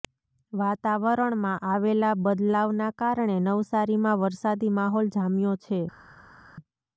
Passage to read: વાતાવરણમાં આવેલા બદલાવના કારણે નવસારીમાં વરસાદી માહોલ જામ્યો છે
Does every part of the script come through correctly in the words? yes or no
yes